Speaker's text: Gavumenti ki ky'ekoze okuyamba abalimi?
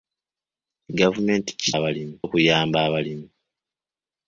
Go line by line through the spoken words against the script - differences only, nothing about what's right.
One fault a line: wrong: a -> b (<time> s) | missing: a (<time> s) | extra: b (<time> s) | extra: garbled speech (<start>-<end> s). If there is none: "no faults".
wrong: ky'ekoze -> abalimi (1.8 s)